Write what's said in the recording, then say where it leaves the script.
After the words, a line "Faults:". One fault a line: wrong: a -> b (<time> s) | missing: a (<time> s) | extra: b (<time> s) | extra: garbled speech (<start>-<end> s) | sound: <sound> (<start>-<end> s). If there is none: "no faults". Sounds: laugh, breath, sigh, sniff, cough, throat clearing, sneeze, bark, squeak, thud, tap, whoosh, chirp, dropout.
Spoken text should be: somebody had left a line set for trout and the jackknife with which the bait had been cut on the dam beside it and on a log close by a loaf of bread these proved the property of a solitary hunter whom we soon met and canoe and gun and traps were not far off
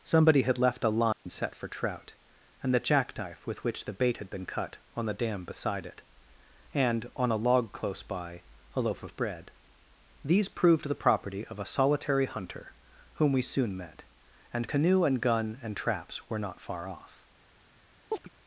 somebody had left a line set for trout and the jackknife with which the bait had been cut on the dam beside it and on a log close by a loaf of bread these proved the property of a solitary hunter whom we soon met and canoe and gun and traps were not far off
Faults:
sound: dropout (1.1-1.3 s)
sound: chirp (18.1-18.3 s)